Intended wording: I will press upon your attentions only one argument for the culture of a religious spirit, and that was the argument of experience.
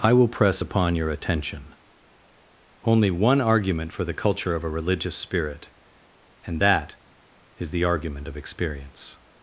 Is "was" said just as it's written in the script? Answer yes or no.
no